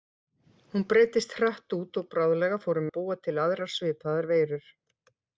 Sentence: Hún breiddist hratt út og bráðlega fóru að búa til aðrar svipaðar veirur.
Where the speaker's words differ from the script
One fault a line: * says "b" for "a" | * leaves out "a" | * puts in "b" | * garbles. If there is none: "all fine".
all fine